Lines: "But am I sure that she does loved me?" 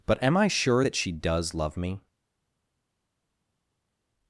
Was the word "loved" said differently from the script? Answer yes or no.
yes